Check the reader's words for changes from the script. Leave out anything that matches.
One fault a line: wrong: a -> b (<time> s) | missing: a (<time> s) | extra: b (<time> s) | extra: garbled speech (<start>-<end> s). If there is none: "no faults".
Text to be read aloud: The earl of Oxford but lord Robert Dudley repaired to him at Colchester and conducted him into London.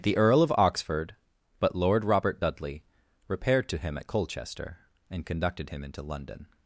no faults